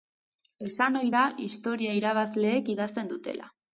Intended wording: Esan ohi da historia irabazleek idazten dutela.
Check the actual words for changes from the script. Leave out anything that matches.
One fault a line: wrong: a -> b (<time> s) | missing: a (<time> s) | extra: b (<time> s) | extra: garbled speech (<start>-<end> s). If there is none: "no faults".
no faults